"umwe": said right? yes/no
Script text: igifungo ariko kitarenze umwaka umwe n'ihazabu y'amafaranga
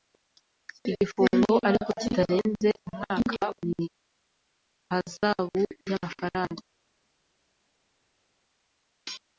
no